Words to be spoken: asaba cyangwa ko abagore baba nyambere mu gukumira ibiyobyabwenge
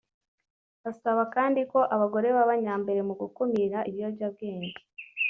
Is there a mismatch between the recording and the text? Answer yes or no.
yes